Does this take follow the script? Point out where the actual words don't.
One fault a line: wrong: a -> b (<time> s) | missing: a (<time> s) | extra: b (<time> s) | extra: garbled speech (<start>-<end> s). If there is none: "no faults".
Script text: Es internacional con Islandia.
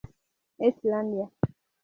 missing: internacional con (0.8 s)